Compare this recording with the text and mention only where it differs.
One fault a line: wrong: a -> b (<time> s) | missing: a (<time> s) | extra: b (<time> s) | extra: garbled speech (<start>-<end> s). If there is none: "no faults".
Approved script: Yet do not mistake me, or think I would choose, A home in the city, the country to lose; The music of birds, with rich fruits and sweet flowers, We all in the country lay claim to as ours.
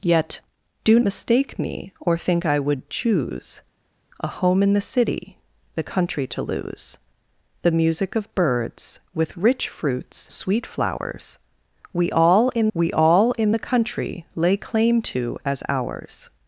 missing: not (1.0 s)
missing: and (10.3 s)
extra: We all in (12.7 s)